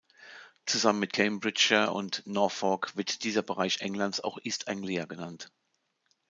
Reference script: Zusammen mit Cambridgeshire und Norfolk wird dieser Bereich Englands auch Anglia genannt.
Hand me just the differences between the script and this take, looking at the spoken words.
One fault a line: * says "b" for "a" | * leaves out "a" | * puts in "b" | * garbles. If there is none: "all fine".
* puts in "East"